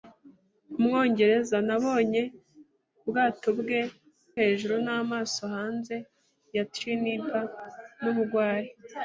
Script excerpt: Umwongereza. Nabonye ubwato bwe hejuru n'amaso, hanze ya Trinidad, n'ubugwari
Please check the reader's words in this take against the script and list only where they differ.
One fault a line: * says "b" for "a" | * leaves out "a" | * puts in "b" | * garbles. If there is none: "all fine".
all fine